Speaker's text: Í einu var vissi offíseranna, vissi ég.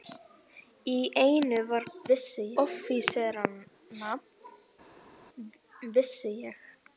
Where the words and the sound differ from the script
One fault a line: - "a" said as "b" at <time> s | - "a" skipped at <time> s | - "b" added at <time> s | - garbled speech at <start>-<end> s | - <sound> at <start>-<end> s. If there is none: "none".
none